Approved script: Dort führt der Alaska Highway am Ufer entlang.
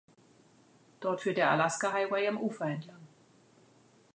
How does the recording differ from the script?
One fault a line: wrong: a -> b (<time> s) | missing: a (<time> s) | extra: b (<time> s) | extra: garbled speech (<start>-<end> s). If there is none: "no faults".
no faults